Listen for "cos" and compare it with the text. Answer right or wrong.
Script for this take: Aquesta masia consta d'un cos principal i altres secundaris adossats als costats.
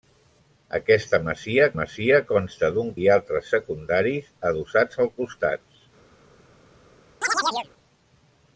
wrong